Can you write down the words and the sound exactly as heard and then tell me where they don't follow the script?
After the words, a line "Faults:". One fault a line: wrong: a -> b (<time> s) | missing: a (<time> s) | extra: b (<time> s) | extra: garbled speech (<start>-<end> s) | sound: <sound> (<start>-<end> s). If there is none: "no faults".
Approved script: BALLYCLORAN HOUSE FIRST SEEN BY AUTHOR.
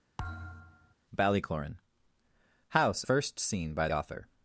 BALLYCLORAN HOUSE FIRST SEEN BY AUTHOR.
Faults:
sound: thud (0.2-0.9 s)